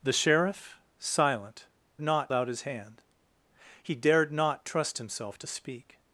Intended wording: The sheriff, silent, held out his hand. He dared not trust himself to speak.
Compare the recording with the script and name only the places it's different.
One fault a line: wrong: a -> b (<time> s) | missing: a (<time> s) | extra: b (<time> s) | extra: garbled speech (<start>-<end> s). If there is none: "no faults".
wrong: held -> not (2.0 s)